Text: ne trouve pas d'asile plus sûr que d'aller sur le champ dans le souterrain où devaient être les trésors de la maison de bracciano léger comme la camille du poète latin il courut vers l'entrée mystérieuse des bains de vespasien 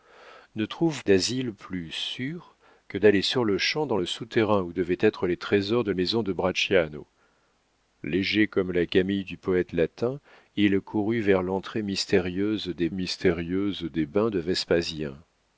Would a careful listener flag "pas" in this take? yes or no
yes